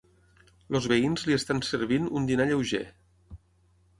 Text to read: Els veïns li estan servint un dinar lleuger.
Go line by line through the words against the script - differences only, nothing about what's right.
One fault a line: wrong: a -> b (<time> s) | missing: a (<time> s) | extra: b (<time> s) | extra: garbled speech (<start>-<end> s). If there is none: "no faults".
no faults